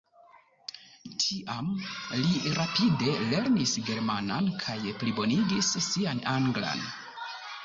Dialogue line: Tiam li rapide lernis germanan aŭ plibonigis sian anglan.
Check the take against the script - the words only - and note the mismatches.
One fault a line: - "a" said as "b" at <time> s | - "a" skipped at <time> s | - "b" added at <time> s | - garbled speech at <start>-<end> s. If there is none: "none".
- "aŭ" said as "kaj" at 4.7 s